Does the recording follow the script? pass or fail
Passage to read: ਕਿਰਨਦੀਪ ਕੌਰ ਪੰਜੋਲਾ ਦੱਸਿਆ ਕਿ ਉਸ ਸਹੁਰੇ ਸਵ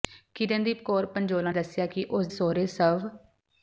pass